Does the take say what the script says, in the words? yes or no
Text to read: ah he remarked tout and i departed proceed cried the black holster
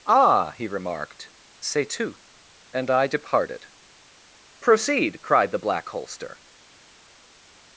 no